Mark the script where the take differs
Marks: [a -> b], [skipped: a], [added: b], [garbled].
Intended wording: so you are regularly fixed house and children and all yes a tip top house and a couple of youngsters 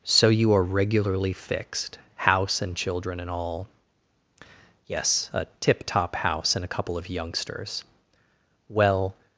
so you are regularly fixed house and children and all yes a tip top house and a couple of youngsters [added: well]